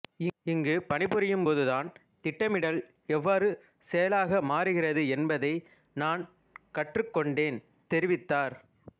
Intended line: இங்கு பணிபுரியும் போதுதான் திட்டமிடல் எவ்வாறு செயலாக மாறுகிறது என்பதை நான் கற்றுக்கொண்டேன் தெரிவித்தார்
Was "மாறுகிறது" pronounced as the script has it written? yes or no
yes